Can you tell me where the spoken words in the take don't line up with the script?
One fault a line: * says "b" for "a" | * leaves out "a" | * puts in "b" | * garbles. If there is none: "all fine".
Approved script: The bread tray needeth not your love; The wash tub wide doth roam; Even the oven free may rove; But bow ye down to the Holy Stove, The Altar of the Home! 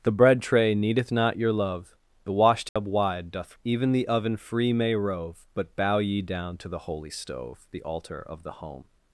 * leaves out "roam"